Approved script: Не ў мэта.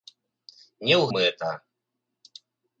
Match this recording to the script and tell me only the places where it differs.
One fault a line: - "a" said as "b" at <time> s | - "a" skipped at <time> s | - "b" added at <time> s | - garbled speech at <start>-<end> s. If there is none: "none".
none